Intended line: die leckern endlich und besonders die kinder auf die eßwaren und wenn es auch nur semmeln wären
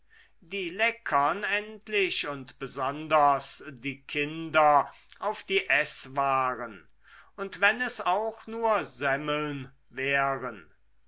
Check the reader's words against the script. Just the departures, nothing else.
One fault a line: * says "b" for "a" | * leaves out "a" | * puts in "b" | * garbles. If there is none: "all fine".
all fine